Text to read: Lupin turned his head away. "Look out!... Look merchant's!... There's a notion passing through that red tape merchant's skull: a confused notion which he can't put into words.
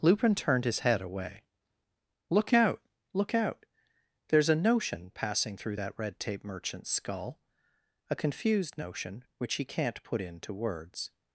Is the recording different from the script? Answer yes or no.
yes